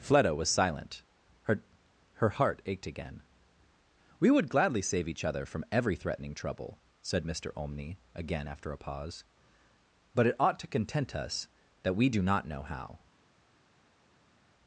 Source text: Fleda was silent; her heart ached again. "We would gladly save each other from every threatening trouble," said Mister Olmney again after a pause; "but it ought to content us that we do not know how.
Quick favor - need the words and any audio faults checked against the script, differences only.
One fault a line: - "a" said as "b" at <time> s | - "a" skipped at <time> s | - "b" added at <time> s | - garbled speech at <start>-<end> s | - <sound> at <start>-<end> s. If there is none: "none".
- "her" added at 2.1 s